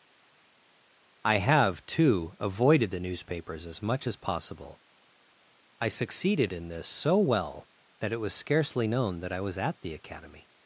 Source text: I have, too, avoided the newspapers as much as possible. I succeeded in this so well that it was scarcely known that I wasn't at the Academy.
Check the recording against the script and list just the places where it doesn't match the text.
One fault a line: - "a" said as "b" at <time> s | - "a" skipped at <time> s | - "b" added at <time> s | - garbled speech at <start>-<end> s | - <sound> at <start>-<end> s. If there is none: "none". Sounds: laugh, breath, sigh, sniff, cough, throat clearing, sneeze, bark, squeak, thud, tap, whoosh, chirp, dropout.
- "wasn't" said as "was" at 9.4 s